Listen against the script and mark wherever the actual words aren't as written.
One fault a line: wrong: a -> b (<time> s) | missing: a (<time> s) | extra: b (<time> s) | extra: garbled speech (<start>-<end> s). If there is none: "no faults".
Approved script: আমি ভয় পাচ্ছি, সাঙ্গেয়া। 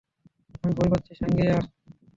no faults